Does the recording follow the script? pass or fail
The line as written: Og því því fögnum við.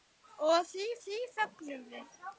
pass